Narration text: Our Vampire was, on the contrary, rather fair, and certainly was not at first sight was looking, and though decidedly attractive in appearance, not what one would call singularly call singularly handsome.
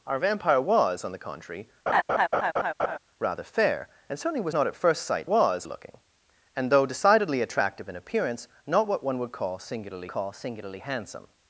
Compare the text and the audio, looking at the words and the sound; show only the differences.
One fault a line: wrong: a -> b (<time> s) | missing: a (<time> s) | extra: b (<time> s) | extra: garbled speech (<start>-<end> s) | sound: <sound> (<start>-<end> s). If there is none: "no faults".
sound: laugh (1.9-3.0 s)